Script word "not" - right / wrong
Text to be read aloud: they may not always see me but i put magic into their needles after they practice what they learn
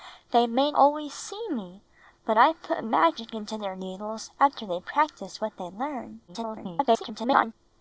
wrong